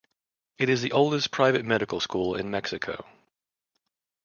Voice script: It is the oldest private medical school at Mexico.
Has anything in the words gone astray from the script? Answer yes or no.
yes